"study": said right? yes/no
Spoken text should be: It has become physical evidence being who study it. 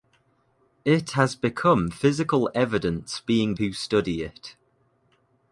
yes